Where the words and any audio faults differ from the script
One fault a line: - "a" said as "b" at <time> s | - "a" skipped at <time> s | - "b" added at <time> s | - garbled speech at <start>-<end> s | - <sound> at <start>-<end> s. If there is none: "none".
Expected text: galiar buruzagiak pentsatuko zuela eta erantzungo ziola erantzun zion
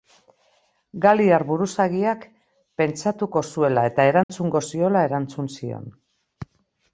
- dropout at 4.2-4.3 s